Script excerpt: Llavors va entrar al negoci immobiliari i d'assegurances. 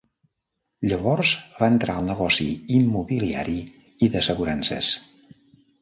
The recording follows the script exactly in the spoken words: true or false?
true